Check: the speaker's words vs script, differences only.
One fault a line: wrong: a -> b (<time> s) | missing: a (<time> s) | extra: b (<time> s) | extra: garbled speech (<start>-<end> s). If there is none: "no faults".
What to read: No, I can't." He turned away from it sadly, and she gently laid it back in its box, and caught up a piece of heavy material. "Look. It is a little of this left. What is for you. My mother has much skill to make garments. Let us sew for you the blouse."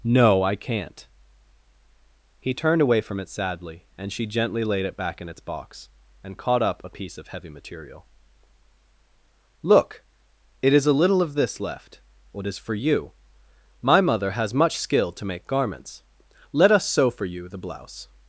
no faults